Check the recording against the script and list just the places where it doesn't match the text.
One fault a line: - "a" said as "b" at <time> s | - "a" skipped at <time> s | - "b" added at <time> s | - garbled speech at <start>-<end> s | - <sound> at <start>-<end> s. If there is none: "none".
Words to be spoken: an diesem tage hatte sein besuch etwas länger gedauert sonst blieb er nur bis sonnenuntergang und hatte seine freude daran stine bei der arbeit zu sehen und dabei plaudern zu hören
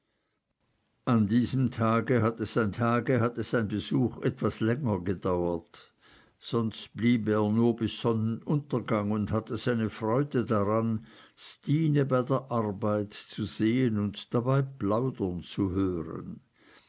- "tage hatte sein" added at 2.7 s